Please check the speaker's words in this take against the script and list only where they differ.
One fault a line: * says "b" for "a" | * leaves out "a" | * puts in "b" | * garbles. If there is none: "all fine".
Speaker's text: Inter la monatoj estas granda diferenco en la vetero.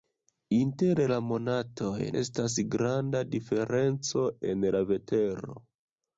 all fine